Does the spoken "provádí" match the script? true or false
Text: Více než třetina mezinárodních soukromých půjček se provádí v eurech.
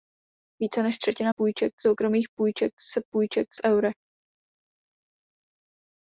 false